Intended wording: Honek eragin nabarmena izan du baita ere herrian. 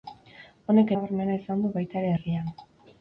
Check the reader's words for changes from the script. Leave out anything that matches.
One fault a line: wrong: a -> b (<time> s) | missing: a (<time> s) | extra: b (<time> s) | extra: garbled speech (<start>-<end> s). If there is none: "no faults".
missing: eragin (0.9 s)